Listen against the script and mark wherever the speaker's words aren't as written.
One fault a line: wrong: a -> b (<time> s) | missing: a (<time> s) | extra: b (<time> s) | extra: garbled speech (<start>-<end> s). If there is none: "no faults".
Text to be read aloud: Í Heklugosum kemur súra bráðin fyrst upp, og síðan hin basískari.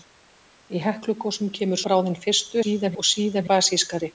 missing: súra (1.8 s)
wrong: upp -> síðan (2.6 s)
missing: hin (3.5 s)